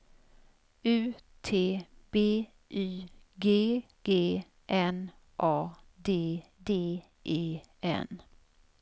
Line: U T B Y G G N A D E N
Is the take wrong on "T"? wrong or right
right